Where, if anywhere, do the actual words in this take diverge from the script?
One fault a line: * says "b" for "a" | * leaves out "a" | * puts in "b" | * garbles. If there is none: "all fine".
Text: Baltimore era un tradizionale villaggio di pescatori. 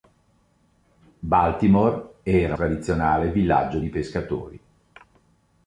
* leaves out "un"